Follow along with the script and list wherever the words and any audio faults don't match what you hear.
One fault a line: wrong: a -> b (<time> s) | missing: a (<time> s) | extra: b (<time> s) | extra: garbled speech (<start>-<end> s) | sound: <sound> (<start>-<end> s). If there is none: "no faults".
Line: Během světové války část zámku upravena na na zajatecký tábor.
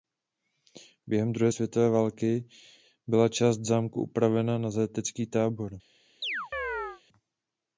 extra: druhé (1.3 s)
extra: byla (3.1 s)
missing: na (4.7 s)
sound: chirp (6.2-7.0 s)